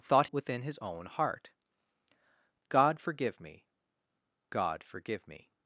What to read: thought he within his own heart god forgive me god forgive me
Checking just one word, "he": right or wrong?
wrong